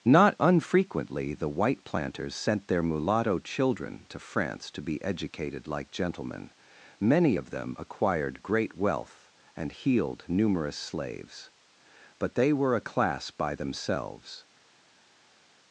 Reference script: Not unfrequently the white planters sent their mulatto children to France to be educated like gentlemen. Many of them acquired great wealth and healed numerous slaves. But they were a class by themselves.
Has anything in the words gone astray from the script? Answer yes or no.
no